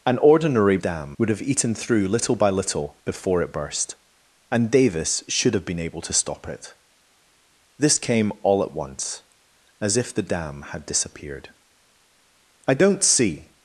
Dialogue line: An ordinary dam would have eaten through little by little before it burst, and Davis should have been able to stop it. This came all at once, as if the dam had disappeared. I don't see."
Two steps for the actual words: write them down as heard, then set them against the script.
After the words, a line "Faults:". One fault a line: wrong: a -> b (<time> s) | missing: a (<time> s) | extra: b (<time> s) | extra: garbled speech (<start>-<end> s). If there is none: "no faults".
An ordinary dam would have eaten through little by little before it burst, and Davis should have been able to stop it. This came all at once, as if the dam had disappeared. I don't see."
Faults:
no faults